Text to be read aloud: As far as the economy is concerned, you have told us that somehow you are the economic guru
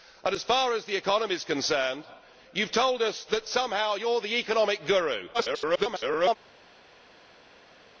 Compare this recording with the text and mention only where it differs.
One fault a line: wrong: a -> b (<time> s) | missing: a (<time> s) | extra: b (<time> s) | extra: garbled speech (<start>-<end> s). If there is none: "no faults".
extra: garbled speech (5.3-6.4 s)